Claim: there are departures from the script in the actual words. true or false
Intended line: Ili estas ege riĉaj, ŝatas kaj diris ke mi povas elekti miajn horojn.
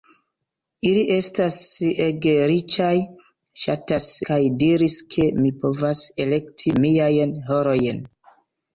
false